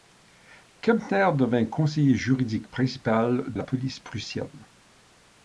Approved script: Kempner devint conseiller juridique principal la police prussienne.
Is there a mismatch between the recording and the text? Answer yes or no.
no